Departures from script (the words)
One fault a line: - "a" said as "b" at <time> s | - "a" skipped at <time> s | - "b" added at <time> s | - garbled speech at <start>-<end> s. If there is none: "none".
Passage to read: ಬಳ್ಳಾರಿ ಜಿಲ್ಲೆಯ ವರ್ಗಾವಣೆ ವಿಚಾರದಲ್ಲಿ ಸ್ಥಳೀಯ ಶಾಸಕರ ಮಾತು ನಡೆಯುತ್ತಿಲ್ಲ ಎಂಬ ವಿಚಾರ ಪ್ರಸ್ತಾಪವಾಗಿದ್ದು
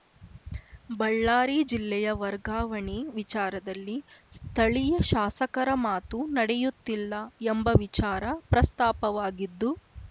none